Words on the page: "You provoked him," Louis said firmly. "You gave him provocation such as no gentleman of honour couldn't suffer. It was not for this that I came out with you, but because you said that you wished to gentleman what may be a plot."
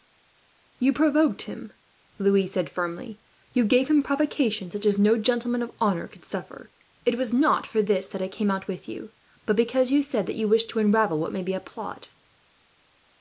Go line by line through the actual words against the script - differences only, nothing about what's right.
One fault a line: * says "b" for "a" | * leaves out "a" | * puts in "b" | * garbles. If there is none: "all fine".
* says "could" for "couldn't"
* says "unravel" for "gentleman"